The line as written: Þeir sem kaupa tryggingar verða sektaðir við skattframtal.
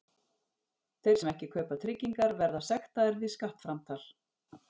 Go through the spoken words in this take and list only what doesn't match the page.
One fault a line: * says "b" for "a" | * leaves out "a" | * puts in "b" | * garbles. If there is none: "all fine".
* puts in "ekki"